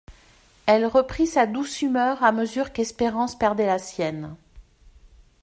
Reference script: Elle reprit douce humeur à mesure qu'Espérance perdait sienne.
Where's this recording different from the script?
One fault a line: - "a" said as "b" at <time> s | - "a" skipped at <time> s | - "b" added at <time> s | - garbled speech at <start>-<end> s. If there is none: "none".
- "sa" added at 1.3 s
- "la" added at 3.7 s